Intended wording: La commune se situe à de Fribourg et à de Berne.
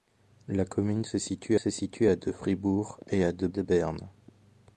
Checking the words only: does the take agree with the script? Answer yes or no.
no